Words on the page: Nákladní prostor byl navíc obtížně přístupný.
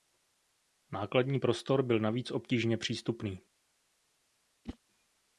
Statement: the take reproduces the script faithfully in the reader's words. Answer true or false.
true